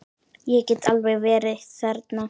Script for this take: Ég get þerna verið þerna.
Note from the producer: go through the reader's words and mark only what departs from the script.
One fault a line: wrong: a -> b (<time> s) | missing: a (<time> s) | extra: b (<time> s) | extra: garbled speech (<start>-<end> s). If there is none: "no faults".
wrong: þerna -> alveg (0.9 s)